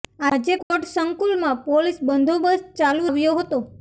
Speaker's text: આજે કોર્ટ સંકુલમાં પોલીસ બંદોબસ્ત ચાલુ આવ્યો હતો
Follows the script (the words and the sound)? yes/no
no